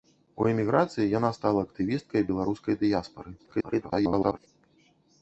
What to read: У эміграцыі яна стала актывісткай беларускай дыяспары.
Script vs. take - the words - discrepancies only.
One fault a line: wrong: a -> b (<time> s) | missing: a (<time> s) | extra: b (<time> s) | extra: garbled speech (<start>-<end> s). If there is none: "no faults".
extra: garbled speech (3.4-4.5 s)